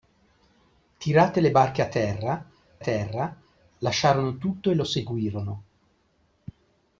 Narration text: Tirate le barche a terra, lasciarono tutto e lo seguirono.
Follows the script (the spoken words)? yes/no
no